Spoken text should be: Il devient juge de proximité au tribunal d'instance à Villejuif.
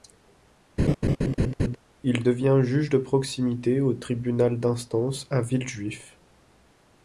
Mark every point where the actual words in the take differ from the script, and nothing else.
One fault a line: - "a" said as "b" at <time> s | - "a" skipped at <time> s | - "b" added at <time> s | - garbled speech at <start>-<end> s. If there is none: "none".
none